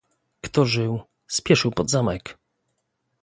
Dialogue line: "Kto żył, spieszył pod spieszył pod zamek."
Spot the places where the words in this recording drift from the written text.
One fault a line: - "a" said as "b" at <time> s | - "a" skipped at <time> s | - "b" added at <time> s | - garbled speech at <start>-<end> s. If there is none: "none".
- "spieszył pod" skipped at 1.9 s